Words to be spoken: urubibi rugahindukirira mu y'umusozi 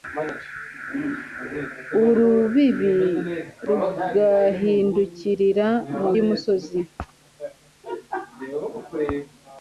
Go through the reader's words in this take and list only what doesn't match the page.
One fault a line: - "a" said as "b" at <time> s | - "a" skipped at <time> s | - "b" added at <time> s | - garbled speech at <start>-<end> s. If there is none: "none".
none